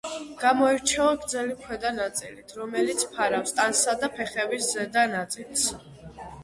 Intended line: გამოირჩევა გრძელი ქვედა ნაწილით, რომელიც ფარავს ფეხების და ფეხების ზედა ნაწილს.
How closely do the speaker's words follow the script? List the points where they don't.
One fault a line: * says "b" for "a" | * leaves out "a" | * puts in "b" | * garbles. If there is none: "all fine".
* says "ტანსა" for "ფეხების"